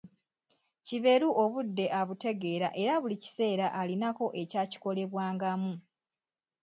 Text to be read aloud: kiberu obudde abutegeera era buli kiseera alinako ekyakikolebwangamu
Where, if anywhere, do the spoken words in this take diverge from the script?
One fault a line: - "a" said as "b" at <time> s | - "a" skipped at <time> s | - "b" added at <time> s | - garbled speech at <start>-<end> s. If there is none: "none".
none